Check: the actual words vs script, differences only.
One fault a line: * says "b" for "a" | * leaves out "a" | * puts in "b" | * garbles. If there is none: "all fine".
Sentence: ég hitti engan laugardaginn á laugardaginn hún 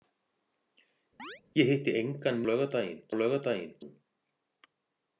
all fine